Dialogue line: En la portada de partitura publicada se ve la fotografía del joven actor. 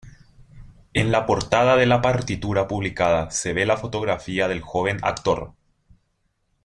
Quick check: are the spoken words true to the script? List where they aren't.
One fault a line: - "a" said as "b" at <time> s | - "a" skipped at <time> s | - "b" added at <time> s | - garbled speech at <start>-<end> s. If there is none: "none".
- "la" added at 1.8 s